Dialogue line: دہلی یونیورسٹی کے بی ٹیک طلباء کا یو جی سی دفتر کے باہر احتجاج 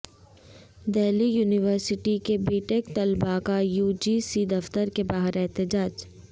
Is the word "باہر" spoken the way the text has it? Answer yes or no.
yes